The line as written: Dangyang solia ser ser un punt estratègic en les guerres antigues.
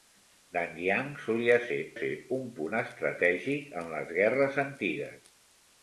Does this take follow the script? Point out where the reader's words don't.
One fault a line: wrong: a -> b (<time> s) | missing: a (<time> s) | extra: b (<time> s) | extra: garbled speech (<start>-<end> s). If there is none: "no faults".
no faults